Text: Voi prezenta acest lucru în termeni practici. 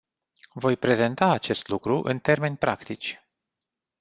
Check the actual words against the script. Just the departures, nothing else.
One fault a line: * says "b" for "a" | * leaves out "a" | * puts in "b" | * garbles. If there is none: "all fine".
all fine